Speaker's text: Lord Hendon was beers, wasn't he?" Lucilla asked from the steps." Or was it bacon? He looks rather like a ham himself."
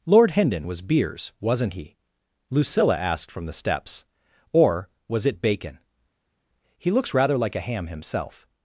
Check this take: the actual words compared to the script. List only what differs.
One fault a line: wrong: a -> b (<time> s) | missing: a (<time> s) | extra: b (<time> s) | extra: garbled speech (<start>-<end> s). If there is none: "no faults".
no faults